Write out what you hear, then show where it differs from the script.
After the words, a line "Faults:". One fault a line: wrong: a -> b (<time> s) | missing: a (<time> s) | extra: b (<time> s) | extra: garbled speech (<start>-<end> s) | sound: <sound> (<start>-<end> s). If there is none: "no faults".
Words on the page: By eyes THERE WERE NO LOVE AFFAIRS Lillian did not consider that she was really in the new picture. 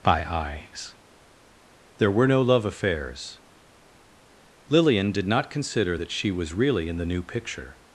By eyes THERE WERE NO LOVE AFFAIRS Lillian did not consider that she was really in the new picture.
Faults:
no faults